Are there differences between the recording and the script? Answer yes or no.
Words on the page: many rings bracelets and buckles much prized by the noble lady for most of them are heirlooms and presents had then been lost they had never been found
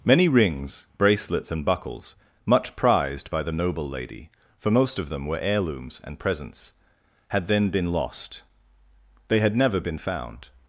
yes